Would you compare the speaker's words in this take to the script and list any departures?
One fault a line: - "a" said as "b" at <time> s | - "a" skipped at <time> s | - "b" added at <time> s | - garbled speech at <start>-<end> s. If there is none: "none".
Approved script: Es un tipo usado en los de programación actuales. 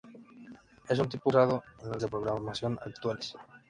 none